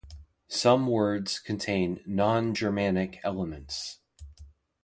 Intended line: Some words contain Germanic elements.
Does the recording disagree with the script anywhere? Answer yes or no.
yes